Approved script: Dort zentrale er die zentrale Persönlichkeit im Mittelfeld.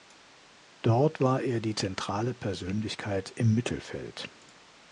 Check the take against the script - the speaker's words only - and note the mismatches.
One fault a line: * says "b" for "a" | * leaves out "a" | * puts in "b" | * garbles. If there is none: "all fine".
* says "war" for "zentrale"